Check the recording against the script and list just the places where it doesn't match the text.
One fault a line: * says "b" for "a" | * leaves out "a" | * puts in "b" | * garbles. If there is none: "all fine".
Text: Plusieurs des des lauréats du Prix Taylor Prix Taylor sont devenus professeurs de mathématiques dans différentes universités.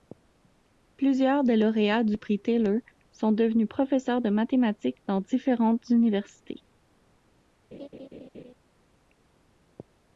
* leaves out "des"
* leaves out "Prix Taylor"